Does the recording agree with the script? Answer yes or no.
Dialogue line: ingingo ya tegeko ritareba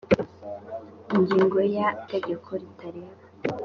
yes